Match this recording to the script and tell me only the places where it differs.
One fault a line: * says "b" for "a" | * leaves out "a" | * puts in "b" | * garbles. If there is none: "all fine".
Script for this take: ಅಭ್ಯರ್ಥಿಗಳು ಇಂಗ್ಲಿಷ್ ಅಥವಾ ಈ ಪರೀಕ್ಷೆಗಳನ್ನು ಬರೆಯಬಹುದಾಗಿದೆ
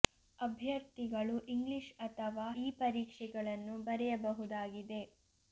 all fine